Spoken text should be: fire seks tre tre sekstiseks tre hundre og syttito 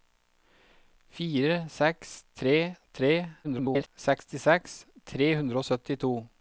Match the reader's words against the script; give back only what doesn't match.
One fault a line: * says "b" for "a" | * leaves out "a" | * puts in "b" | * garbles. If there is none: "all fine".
* garbles